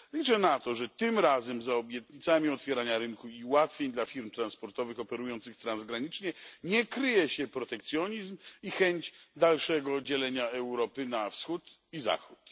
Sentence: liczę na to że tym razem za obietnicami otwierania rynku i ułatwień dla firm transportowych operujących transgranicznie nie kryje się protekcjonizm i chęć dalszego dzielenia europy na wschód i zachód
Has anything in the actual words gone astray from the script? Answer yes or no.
no